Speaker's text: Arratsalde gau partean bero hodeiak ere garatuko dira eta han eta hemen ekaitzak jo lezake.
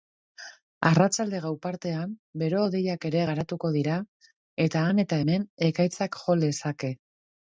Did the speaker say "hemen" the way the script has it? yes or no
yes